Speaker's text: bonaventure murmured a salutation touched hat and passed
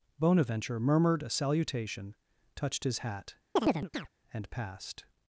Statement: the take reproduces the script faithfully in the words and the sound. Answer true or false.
false